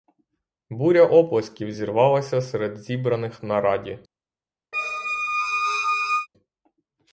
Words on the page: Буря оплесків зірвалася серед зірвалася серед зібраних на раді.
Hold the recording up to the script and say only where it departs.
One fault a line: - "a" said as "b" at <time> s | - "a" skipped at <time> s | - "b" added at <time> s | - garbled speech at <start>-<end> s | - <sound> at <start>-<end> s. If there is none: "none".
- "зірвалася серед" skipped at 2.8 s
- squeak at 4.7-6.3 s